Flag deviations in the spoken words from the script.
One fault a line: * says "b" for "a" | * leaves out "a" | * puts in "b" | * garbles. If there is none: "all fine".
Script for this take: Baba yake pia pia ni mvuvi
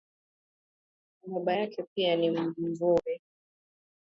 * leaves out "pia"